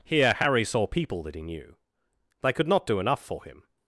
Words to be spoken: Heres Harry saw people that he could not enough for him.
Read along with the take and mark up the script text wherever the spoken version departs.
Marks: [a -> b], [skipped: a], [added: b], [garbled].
[Heres -> Here] Harry saw people that he [added: knew They] could not [added: do] enough for him.